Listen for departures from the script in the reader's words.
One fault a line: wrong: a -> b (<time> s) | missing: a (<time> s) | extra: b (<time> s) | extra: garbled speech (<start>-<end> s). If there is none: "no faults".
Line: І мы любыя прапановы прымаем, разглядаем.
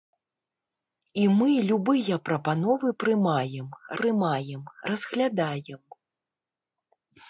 extra: прымаем (4.0 s)